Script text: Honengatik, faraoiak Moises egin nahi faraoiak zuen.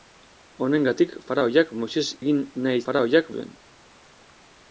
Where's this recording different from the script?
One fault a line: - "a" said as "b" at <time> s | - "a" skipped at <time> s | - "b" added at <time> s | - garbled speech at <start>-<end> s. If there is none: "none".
none